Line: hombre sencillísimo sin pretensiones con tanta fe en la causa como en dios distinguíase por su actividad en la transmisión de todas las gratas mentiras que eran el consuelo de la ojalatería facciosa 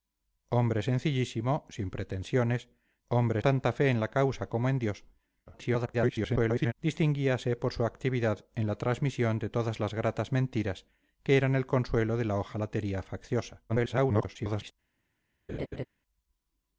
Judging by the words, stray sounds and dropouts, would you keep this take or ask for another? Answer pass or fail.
fail